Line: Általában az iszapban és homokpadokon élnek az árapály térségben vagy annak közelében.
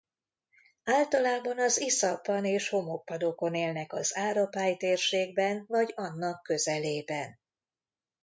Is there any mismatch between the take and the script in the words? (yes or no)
no